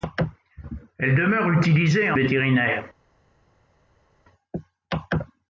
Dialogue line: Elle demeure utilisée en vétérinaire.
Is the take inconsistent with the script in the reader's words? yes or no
no